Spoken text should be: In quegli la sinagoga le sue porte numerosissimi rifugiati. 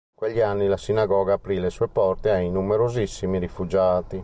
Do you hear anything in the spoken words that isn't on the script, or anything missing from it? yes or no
yes